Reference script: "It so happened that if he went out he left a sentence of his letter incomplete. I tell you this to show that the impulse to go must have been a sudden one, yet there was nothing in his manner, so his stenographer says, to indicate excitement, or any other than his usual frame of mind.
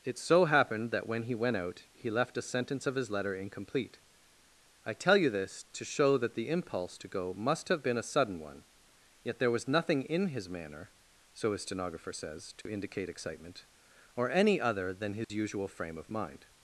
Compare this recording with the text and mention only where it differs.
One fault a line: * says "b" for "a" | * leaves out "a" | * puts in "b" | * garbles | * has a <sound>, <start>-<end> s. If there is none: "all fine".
* says "when" for "if"
* has a dropout, 12.6-12.7 s
* has a dropout, 15.2-15.3 s